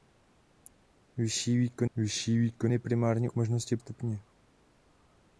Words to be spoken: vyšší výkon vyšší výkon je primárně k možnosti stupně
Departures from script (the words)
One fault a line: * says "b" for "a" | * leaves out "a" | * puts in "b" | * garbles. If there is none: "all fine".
all fine